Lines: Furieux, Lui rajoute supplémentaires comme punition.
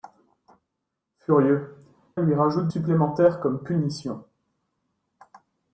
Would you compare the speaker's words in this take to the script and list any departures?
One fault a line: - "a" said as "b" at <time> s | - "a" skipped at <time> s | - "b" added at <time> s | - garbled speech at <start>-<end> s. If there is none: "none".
none